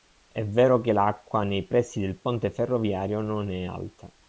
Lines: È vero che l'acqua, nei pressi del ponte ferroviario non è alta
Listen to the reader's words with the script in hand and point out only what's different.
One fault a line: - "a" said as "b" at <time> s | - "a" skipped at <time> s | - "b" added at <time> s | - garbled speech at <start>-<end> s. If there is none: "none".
none